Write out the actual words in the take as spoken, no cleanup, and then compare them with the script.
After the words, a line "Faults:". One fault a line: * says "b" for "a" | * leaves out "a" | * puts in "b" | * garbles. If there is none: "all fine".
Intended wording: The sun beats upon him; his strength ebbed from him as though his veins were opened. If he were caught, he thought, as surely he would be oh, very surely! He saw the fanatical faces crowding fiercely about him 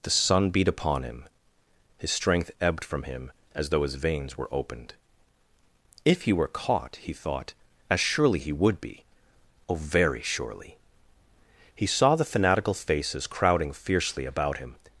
The sun beat upon him; his strength ebbed from him as though his veins were opened. If he were caught, he thought, as surely he would be oh, very surely! He saw the fanatical faces crowding fiercely about him
Faults:
* says "beat" for "beats"